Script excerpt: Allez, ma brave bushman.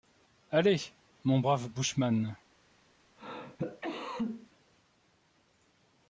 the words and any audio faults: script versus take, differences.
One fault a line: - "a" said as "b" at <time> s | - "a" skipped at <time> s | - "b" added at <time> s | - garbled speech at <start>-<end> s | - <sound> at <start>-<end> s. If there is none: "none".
- "ma" said as "mon" at 1.3 s
- cough at 3.2-4.5 s